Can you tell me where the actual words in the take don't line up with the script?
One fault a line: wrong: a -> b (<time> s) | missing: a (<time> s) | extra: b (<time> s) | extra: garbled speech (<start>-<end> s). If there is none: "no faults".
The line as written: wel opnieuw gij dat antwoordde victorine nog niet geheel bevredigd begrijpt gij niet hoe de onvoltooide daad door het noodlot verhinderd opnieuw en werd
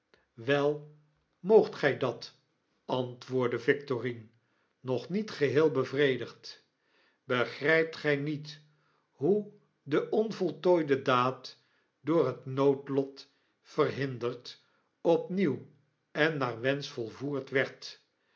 wrong: opnieuw -> moogt (1.4 s)
extra: naar wensch volvoerd (16.4 s)